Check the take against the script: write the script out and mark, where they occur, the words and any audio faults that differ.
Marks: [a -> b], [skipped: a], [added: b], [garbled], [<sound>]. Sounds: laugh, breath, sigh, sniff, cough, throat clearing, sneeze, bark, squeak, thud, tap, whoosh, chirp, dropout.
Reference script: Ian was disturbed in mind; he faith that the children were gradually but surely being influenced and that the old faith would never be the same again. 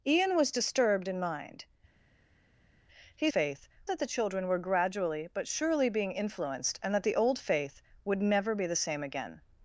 Ian was disturbed in mind; he faith that the children were gradually but surely being influenced and that the old faith would never be the same again.